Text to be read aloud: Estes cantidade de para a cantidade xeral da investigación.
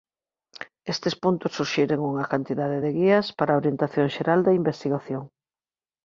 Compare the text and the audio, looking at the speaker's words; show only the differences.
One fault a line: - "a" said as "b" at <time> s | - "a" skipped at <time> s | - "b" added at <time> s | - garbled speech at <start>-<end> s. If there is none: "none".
- "puntos suxiren unha" added at 1.2 s
- "guías" added at 3.0 s
- "cantidade" said as "orientación" at 3.6 s